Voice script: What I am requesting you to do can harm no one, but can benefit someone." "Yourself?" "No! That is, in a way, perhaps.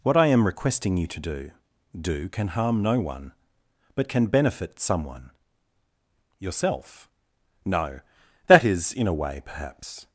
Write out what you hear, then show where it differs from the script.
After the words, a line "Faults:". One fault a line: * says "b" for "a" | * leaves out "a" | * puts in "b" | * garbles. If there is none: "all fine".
What I am requesting you to do do can harm no one, but can benefit someone." "Yourself?" "No! That is, in a way, perhaps.
Faults:
* puts in "do"